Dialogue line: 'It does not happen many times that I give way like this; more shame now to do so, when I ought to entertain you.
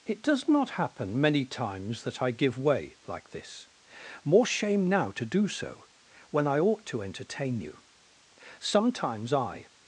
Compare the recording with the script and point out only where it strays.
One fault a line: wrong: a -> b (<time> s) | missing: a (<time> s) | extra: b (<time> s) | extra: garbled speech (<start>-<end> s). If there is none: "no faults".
extra: Sometimes I (8.6 s)